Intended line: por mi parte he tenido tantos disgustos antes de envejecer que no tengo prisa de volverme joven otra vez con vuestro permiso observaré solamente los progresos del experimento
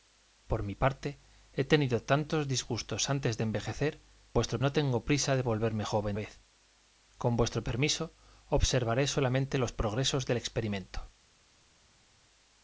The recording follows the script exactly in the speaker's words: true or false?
false